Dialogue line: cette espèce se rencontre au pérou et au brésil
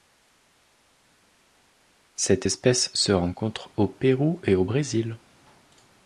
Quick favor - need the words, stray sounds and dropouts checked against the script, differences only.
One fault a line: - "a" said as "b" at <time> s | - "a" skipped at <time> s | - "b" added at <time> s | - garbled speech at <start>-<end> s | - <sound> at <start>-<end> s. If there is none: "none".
none